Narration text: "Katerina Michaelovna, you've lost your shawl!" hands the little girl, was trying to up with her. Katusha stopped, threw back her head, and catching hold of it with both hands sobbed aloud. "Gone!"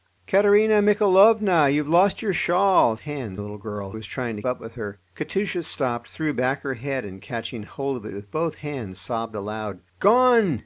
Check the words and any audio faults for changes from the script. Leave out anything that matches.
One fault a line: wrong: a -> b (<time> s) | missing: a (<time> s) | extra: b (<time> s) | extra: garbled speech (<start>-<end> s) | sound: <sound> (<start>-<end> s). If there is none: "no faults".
no faults